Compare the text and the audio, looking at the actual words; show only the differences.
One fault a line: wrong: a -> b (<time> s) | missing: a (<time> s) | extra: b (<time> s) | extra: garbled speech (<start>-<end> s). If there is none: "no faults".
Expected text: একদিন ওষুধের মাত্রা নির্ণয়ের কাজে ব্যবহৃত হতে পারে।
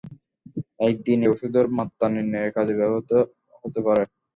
no faults